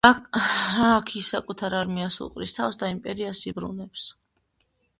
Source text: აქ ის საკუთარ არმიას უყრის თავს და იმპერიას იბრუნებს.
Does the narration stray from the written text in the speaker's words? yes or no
no